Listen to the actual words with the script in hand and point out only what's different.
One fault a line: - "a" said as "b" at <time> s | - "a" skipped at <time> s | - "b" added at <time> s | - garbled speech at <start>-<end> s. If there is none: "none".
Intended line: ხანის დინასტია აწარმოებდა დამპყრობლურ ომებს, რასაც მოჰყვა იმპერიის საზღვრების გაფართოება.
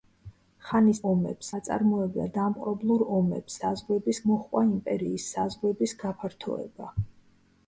- "დინასტია" said as "ომებს" at 1.1 s
- "რასაც" said as "საზღვრების" at 3.6 s